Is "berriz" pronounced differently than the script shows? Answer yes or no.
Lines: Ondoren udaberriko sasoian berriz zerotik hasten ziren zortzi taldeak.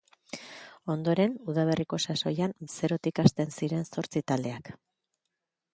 yes